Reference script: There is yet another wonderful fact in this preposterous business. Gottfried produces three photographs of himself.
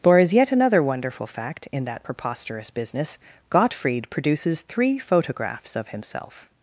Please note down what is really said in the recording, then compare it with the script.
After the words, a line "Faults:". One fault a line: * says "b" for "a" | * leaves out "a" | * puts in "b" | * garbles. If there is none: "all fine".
There is yet another wonderful fact in that preposterous business. Gottfried produces three photographs of himself.
Faults:
* says "that" for "this"